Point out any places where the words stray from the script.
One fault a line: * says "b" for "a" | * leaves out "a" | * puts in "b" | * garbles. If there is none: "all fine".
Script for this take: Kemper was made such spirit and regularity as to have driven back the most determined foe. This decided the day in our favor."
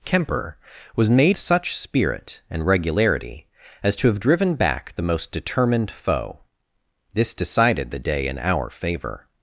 all fine